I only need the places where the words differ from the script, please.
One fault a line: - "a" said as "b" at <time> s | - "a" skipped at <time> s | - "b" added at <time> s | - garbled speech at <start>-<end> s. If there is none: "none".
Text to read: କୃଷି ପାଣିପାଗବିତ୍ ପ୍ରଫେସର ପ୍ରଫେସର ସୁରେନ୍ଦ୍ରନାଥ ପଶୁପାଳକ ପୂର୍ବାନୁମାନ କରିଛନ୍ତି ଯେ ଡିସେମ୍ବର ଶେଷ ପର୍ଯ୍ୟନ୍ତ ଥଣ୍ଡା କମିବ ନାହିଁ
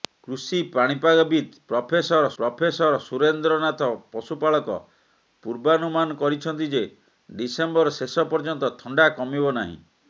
none